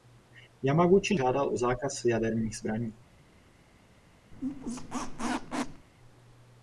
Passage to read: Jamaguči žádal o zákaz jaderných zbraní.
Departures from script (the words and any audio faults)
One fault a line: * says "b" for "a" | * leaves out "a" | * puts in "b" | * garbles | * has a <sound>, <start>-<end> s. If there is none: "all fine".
* has a squeak, 4.3-5.9 s